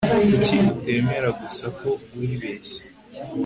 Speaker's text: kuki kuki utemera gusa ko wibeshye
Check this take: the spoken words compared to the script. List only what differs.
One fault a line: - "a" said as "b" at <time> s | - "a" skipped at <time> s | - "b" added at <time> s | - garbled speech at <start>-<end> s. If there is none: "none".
- "kuki" skipped at 0.6 s